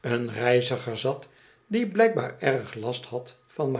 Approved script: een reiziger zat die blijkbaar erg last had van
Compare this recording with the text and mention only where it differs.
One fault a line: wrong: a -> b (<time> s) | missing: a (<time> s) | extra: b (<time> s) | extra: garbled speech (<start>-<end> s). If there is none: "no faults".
no faults